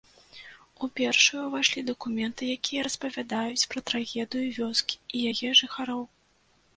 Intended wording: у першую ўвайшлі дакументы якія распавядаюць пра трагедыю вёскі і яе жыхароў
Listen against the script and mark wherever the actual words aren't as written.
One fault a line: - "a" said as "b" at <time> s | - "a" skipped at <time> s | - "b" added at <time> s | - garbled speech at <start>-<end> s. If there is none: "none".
none